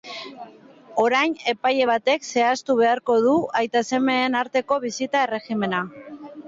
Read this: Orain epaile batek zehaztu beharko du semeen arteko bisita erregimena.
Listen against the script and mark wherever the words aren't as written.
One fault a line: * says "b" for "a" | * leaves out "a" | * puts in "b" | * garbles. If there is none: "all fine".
* puts in "aita"